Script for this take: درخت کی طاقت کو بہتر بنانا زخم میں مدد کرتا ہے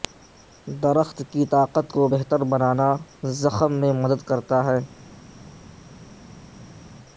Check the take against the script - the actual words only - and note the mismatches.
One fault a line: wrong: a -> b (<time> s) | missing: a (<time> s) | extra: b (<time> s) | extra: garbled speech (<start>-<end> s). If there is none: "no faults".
no faults